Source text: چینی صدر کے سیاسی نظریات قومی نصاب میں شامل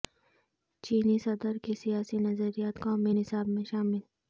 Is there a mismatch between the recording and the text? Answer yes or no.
no